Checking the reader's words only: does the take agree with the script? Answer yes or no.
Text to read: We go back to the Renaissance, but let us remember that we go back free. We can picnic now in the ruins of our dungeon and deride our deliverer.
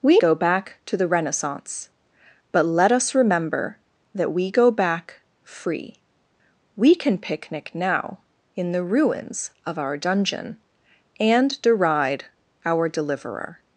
yes